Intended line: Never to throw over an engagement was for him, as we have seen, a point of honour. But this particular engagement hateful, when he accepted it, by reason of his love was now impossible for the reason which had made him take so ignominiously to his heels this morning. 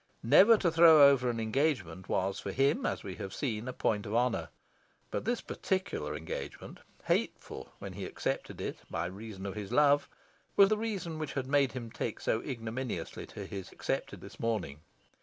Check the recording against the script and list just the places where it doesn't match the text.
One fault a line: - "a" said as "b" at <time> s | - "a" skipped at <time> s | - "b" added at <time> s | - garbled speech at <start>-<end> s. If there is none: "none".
- "now impossible for" skipped at 10.7 s
- "heels" said as "accepted" at 13.7 s